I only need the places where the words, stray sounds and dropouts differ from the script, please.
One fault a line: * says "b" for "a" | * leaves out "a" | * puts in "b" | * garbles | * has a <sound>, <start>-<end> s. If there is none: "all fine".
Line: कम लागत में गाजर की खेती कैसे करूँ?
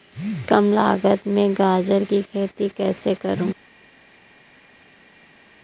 all fine